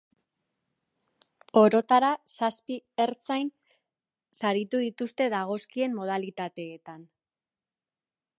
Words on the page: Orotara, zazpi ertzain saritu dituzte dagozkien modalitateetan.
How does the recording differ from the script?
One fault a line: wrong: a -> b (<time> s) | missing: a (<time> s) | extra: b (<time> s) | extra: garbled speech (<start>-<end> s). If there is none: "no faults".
no faults